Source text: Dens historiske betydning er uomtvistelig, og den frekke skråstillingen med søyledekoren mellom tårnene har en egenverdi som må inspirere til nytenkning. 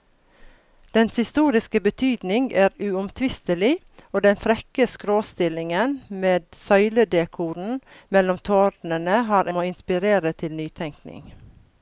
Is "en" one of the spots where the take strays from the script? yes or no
yes